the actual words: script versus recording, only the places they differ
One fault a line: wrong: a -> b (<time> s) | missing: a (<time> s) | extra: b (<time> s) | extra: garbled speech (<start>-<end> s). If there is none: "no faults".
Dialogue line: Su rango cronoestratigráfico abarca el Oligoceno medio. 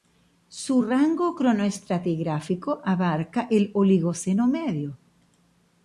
no faults